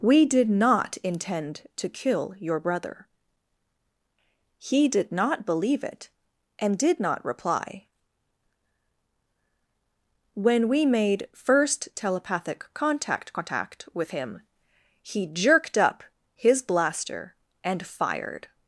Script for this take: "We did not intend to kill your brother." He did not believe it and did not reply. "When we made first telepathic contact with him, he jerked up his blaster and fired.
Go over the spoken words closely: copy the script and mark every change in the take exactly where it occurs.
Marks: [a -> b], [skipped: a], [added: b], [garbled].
"We did not intend to kill your brother." He did not believe it and did not reply. "When we made first telepathic contact [added: contact] with him, he jerked up his blaster and fired.